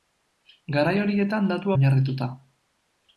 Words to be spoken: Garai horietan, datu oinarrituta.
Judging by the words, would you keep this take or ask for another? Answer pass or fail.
pass